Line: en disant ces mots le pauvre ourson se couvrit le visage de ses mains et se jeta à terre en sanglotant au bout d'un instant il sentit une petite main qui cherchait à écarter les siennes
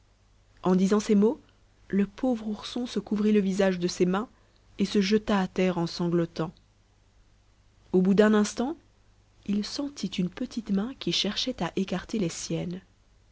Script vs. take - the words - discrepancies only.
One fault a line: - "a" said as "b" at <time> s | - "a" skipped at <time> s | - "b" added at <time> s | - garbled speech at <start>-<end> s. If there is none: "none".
none